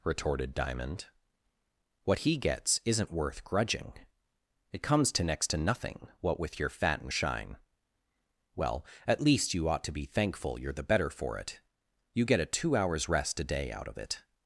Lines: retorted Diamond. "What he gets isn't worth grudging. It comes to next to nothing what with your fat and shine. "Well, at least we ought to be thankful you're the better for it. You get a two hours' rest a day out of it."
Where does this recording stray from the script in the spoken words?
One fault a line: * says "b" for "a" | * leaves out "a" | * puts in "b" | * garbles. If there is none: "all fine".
* says "you" for "we"